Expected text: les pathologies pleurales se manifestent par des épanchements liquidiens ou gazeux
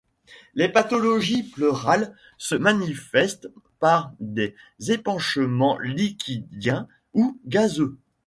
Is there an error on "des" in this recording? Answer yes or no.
no